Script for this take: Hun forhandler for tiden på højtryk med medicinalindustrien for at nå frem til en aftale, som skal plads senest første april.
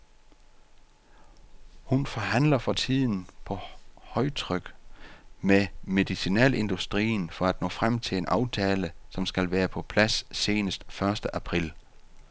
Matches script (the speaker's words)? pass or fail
fail